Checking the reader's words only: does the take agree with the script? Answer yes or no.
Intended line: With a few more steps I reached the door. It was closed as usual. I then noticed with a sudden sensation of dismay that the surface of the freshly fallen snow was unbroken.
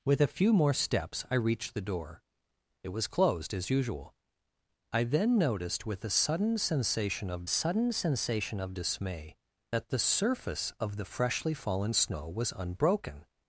no